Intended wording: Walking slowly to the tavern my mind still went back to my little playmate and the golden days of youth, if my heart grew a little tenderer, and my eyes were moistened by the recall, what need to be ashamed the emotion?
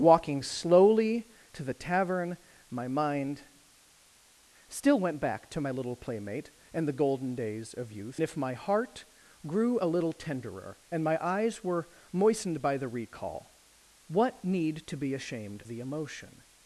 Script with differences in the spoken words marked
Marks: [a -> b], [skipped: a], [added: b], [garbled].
Walking slowly to the tavern my mind still went back to my little playmate and the golden days of youth, if my heart grew a little tenderer, and my eyes were moistened by the recall, what need to be ashamed the emotion?